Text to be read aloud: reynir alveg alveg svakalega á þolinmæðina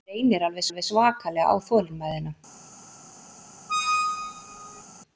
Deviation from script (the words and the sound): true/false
true